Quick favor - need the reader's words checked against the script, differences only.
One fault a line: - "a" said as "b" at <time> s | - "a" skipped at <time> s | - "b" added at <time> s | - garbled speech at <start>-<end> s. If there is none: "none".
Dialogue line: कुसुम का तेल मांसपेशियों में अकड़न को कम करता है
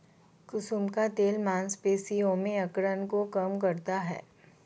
none